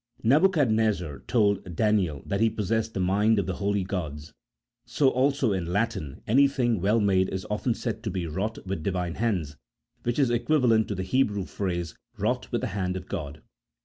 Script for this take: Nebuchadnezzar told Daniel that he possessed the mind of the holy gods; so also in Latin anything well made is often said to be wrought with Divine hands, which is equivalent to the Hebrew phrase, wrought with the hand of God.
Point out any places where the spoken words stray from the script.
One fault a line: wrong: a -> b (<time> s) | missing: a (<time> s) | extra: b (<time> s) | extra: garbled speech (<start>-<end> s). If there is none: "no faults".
no faults